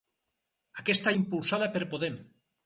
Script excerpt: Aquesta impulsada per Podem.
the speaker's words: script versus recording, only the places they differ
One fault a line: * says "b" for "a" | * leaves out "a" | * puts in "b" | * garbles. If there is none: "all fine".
all fine